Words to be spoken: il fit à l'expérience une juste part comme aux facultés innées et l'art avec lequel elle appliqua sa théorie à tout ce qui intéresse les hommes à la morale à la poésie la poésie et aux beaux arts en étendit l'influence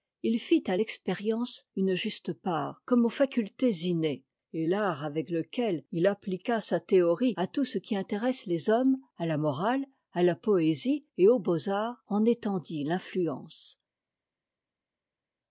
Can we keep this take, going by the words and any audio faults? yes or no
no